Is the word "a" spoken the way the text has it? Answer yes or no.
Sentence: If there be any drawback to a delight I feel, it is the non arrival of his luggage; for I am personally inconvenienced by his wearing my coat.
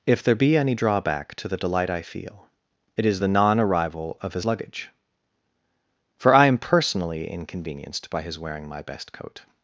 no